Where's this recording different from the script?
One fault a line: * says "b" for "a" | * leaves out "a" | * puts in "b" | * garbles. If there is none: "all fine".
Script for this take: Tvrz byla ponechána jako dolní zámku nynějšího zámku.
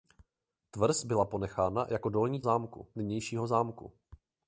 all fine